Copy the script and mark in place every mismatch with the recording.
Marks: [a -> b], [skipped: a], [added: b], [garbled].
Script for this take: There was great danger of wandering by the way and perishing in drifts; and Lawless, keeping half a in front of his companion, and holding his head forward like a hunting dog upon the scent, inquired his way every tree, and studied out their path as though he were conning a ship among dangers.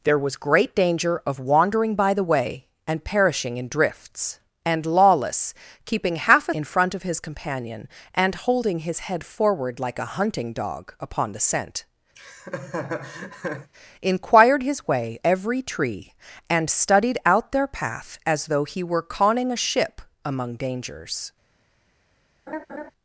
There was great danger of wandering by the way and perishing in drifts; and Lawless, keeping half a in front of his companion, and holding his head forward like a hunting dog upon the scent, inquired his way every tree, and studied out their path as though he were conning a ship among dangers.